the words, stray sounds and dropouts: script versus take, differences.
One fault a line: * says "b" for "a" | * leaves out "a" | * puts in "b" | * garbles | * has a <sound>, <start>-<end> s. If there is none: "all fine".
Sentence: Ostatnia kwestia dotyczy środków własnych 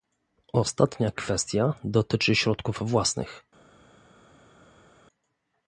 all fine